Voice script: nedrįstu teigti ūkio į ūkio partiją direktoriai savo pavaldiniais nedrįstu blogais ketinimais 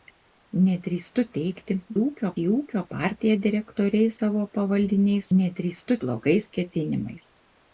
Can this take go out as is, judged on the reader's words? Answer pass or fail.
pass